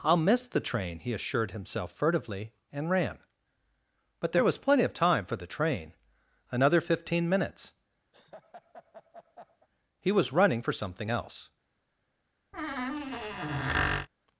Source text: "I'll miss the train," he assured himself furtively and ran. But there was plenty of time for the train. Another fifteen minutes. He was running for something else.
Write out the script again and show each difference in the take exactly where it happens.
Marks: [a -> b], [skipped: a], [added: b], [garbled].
"I'll miss the train," he assured himself furtively and ran. But there was plenty of time for the train. Another fifteen minutes. He was running for something else.